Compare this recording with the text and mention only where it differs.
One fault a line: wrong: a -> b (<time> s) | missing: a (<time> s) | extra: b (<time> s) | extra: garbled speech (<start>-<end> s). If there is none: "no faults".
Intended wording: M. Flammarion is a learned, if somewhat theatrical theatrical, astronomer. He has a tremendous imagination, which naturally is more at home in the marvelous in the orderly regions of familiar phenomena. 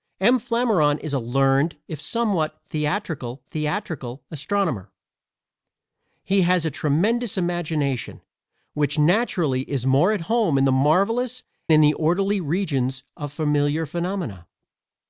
no faults